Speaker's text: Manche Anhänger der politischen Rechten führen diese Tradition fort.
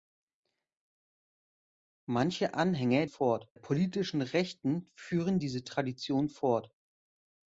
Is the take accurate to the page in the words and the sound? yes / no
no